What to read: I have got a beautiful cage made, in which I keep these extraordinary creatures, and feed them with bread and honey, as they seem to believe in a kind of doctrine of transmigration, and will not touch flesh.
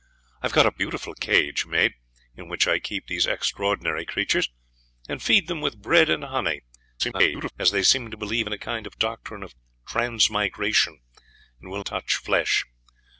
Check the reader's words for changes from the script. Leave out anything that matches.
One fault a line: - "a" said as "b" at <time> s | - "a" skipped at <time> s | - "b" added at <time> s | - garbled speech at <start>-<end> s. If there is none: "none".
- garbled speech at 7.0-7.5 s
- "not" skipped at 11.8 s